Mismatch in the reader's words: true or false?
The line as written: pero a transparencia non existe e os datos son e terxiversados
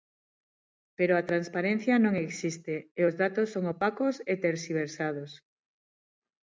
true